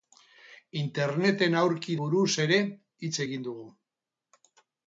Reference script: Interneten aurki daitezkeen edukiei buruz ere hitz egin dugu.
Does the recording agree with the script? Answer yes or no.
no